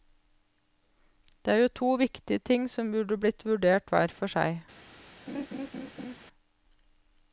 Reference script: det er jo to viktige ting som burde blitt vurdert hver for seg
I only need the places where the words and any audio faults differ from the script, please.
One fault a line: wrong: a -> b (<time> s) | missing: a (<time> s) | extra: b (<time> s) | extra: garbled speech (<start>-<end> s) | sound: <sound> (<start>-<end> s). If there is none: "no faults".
sound: laugh (5.3-6.2 s)